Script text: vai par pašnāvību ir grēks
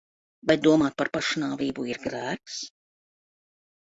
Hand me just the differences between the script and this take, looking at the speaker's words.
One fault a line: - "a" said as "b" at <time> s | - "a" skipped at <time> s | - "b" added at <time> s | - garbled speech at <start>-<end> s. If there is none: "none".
- "domāt" added at 0.7 s